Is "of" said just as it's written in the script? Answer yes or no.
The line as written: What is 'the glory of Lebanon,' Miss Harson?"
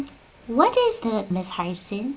no